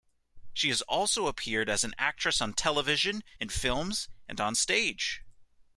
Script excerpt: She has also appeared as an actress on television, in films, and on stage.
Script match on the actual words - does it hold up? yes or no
yes